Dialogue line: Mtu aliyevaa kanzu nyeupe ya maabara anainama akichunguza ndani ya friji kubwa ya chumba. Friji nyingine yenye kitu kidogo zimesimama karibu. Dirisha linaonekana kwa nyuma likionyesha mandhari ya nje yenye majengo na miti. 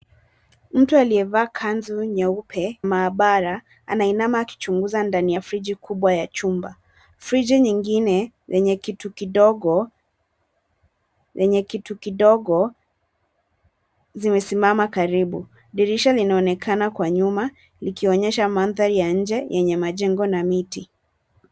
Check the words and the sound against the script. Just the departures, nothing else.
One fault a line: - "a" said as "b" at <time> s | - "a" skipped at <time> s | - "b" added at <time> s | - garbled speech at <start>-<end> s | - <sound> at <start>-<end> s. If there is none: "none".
- "ya" skipped at 2.8 s
- "yenye kitu kidogo" added at 11.3 s